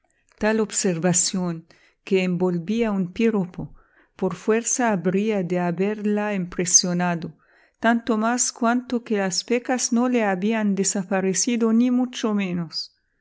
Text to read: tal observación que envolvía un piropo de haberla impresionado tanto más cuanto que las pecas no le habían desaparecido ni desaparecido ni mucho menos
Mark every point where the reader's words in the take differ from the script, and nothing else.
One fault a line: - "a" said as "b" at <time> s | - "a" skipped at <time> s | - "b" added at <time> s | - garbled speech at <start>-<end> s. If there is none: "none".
- "por fuerza habría" added at 4.2 s
- "desaparecido ni" skipped at 11.9 s